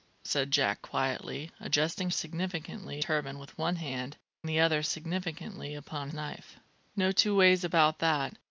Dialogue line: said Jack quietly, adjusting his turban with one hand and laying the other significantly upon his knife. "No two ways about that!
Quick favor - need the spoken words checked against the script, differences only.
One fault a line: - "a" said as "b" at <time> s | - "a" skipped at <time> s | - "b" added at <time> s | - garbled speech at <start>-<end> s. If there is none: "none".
- "his" said as "significantly" at 2.1 s
- "and laying" skipped at 4.2 s
- "his" skipped at 6.1 s